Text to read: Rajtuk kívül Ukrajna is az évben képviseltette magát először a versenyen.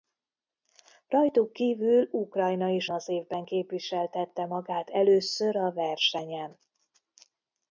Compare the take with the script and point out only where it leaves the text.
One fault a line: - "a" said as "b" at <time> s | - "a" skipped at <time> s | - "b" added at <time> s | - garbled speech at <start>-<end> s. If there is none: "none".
none